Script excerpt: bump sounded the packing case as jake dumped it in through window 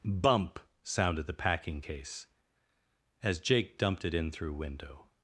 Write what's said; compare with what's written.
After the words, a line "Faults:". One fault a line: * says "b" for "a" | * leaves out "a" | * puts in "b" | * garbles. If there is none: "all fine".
bump sounded the packing case as jake dumped it in through window
Faults:
all fine